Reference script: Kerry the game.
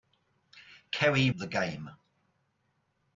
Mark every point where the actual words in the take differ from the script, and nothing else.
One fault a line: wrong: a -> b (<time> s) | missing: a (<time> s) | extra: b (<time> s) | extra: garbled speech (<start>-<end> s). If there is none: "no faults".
no faults